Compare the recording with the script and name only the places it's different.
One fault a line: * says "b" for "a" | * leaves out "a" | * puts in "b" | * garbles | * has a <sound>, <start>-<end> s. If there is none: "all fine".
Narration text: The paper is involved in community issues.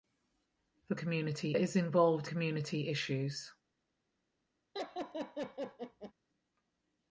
* says "community" for "paper"
* leaves out "in"
* has a laugh, 4.7-6.1 s